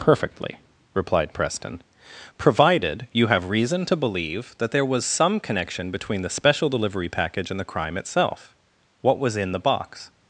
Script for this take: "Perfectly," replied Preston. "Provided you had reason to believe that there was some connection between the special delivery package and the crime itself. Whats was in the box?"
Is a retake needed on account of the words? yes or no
yes